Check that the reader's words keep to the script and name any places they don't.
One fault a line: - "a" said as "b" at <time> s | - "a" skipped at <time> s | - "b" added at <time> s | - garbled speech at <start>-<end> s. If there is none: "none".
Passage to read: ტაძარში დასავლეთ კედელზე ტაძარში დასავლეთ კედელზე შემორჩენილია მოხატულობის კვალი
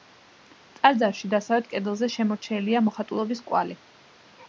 - "ტაძარში დასავლეთ კედელზე" skipped at 2.1 s